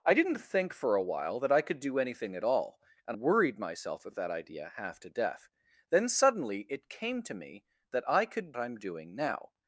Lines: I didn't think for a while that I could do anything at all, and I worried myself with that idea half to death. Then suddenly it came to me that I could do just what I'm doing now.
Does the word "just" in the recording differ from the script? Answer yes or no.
yes